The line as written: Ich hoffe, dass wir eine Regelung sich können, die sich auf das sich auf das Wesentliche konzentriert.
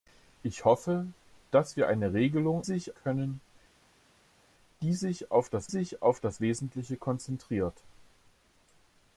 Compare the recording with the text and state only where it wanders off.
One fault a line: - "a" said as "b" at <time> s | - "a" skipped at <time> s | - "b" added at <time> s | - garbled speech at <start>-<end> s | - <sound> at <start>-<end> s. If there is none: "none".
none